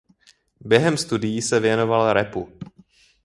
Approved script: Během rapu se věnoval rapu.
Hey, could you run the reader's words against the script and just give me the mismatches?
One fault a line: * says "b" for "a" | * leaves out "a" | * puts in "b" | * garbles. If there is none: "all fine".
* says "studií" for "rapu"